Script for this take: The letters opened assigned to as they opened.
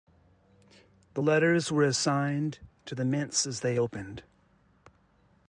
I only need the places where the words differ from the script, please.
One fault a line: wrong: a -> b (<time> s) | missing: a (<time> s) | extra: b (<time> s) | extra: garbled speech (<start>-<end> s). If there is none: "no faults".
wrong: opened -> were (1.7 s)
extra: the mints (2.9 s)